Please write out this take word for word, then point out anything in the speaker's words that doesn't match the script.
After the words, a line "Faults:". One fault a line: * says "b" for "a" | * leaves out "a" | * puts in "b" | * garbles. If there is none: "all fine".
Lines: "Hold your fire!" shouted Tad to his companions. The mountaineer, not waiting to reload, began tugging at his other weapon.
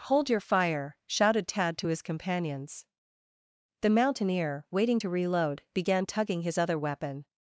"Hold your fire!" shouted Tad to his companions. The mountaineer, waiting to reload, began tugging his other weapon.
Faults:
* leaves out "not"
* leaves out "at"